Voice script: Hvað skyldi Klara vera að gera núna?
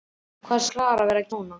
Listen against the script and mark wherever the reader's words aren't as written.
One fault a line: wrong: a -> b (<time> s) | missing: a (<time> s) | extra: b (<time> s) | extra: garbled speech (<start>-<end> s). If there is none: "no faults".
missing: skyldi (0.6 s)
missing: gera (1.3 s)